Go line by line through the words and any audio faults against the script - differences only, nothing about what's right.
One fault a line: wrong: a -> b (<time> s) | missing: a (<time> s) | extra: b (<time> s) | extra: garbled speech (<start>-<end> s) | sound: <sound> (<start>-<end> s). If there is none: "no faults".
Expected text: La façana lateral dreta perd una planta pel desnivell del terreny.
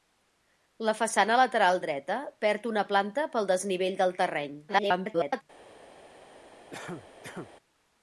extra: garbled speech (4.7-5.4 s)
sound: cough (6.7-7.5 s)